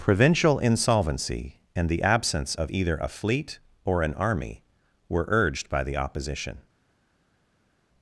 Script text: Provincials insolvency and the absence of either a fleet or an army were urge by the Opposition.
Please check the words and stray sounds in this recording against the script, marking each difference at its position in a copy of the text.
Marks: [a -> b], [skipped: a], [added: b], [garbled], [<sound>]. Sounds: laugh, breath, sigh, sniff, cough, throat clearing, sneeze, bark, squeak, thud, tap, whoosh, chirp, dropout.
[Provincials -> Provincial] insolvency and the absence of either a fleet or an army were [urge -> urged] by the Opposition.